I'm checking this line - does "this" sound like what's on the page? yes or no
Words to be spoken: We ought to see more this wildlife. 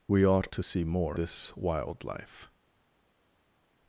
yes